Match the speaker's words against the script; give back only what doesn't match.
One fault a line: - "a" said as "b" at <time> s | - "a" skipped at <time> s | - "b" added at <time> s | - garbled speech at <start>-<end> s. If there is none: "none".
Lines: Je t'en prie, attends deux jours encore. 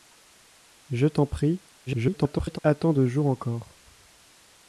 - garbled speech at 1.9-2.6 s